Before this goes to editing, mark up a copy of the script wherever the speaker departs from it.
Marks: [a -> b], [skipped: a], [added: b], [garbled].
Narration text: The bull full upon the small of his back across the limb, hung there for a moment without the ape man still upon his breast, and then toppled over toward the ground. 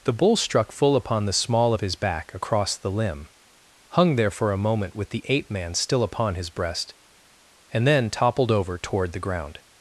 The bull [added: struck] full upon the small of his back across the limb, hung there for a moment [without -> with] the ape man still upon his breast, and then toppled over toward the ground.